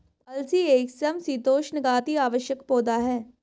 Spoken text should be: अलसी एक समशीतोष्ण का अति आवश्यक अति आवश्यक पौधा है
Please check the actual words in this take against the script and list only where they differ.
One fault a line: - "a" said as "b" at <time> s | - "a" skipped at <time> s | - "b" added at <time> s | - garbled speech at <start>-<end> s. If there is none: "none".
- "अति आवश्यक" skipped at 2.6 s